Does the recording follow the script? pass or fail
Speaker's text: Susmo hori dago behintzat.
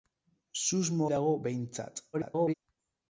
fail